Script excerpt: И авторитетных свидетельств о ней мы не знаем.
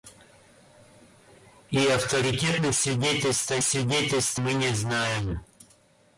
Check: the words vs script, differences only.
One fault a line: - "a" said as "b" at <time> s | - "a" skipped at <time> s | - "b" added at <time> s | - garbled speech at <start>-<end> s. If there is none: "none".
- "ней" said as "свидетельств" at 3.6 s